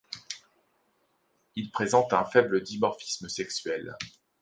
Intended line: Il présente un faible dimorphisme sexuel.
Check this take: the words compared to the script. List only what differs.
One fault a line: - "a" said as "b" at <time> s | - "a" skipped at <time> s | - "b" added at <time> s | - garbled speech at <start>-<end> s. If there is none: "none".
none